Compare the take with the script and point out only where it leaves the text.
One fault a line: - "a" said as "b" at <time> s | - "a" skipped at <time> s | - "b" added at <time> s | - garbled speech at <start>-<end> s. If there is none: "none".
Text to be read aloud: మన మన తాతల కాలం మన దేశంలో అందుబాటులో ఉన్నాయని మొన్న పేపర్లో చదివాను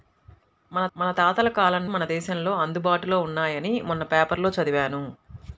none